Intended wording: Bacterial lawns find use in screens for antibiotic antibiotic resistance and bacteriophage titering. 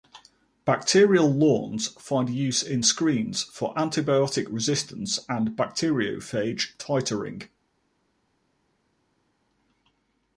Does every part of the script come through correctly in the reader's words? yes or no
no